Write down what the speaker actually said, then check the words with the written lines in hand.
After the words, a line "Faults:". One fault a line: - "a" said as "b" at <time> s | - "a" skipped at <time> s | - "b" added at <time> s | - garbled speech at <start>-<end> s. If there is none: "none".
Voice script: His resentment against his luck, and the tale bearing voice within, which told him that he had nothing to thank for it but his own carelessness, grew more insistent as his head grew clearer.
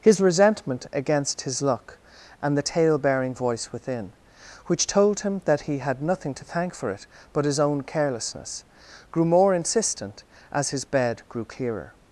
His resentment against his luck, and the tale bearing voice within, which told him that he had nothing to thank for it but his own carelessness, grew more insistent as his bed grew clearer.
Faults:
- "head" said as "bed" at 10.8 s